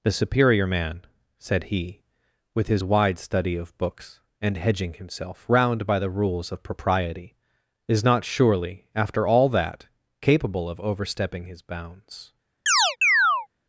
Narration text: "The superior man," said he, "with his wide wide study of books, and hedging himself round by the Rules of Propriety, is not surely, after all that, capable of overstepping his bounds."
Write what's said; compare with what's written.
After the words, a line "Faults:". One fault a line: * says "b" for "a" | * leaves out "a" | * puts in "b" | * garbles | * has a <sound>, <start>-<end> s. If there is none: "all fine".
"The superior man," said he, "with his wide study of books, and hedging himself round by the Rules of Propriety, is not surely, after all that, capable of overstepping his bounds."
Faults:
* leaves out "wide"
* has a chirp, 12.7-13.5 s